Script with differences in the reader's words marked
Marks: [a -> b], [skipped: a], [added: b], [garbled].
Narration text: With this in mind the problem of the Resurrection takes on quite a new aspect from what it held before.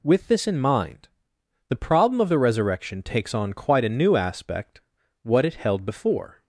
With this in mind the problem of the Resurrection takes on quite a new aspect [skipped: from] what it held before.